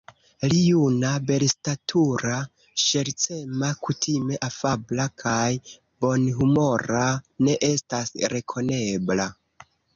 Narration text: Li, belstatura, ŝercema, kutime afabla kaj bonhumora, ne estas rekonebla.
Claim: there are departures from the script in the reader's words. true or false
true